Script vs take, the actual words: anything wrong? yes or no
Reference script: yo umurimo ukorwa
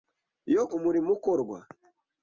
no